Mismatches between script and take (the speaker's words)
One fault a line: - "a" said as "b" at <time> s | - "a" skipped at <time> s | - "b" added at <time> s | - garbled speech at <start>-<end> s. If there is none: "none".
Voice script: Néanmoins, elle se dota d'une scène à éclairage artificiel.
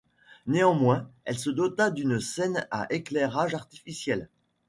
none